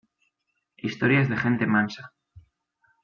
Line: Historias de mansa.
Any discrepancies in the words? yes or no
yes